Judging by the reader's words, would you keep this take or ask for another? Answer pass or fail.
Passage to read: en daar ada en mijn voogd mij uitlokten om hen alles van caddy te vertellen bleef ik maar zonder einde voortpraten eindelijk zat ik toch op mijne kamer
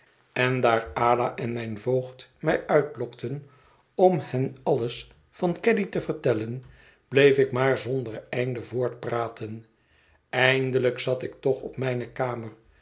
pass